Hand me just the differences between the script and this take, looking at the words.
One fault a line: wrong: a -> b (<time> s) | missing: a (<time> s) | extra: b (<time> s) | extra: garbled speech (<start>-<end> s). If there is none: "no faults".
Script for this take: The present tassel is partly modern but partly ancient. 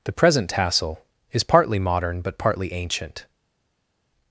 no faults